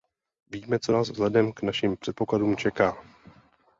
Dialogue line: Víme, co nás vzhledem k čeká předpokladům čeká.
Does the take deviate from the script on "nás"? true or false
false